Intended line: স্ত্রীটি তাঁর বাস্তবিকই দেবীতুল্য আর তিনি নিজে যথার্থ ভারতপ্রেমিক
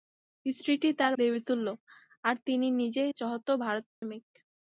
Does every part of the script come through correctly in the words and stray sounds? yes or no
no